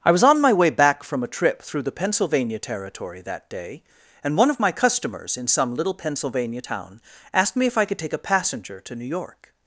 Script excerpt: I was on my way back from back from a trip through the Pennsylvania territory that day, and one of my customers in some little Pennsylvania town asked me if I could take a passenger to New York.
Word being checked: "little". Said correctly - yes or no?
yes